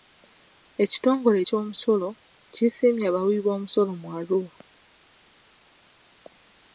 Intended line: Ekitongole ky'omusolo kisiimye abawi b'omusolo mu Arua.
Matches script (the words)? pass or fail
pass